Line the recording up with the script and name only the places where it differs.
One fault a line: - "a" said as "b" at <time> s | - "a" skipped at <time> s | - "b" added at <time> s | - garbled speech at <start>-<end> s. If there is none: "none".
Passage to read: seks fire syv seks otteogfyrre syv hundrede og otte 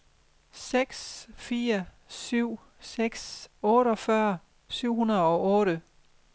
none